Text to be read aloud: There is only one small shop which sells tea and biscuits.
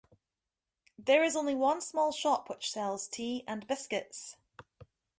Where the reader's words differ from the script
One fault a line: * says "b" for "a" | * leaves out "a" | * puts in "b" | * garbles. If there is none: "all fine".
all fine